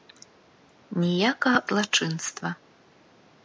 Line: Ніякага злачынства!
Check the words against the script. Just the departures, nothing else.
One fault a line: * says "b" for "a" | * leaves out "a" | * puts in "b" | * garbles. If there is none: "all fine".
all fine